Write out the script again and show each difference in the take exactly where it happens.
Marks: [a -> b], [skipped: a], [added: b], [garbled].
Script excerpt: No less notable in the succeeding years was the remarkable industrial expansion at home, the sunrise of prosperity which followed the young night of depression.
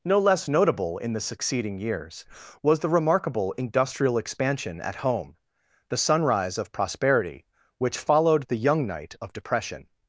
No less notable in the succeeding years was the remarkable industrial expansion at home, the sunrise of prosperity which followed the young night of depression.